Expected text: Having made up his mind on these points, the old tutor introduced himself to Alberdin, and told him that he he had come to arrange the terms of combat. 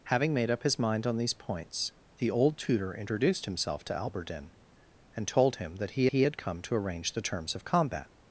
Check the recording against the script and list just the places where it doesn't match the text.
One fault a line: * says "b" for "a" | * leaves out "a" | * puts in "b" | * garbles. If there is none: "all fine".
all fine